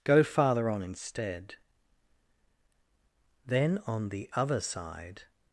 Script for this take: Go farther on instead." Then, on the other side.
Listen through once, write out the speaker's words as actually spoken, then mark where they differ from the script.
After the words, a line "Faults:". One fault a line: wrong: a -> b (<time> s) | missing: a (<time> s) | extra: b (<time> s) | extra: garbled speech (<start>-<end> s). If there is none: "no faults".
Go farther on instead." Then, on the other side.
Faults:
no faults